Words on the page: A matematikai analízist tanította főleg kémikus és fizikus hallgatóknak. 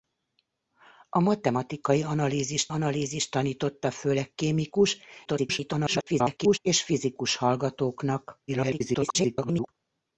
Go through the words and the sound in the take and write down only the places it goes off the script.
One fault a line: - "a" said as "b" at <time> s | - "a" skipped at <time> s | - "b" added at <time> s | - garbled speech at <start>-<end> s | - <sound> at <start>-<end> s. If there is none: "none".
- "analízist" added at 2.7 s
- garbled speech at 5.3-6.6 s
- garbled speech at 8.5-9.7 s